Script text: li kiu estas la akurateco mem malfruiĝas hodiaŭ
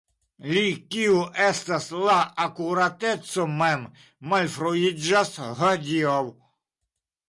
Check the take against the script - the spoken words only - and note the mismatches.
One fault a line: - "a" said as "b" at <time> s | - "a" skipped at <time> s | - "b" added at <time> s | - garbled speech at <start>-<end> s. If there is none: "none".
none